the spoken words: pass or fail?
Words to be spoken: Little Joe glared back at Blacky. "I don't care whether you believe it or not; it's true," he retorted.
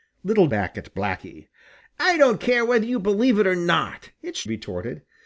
fail